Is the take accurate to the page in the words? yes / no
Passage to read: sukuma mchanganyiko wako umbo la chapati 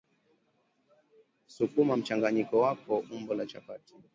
yes